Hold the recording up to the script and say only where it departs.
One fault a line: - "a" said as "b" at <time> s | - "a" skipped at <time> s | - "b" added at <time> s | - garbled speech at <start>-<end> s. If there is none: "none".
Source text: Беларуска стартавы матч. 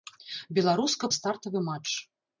none